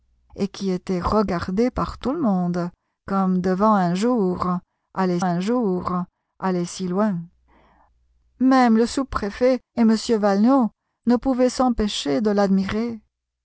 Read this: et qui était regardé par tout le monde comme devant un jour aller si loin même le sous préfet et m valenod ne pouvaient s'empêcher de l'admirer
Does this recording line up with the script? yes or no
no